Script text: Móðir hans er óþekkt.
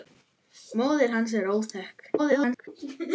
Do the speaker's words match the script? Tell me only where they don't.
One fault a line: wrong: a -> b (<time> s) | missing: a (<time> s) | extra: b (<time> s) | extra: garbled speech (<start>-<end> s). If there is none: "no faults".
extra: garbled speech (2.2-2.7 s)